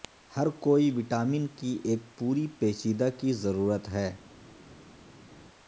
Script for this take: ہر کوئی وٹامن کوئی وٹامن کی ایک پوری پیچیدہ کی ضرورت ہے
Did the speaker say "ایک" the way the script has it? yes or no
yes